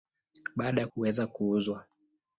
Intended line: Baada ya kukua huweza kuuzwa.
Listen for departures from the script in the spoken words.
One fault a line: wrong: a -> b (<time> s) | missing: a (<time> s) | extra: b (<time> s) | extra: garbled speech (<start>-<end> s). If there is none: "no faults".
missing: kukua (0.9 s)